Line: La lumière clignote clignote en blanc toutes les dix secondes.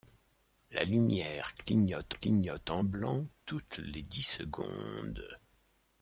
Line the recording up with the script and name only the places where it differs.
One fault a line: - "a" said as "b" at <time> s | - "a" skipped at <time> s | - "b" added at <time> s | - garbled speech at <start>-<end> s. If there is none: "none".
none